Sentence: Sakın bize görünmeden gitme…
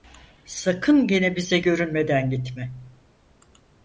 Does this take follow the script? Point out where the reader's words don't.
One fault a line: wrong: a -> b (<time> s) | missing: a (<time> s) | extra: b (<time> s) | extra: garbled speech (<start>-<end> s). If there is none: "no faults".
extra: gene (1.1 s)